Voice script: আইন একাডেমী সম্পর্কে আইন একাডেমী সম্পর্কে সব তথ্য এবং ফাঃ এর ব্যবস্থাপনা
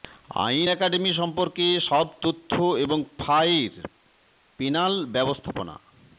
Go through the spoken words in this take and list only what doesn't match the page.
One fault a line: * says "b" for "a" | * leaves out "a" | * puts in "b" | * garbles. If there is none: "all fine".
* leaves out "আইন একাডেমী সম্পর্কে"
* puts in "পেনাল"